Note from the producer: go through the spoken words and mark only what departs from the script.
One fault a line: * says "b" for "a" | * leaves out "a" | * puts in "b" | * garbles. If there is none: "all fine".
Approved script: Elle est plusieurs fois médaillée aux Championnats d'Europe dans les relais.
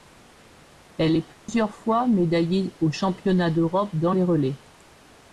all fine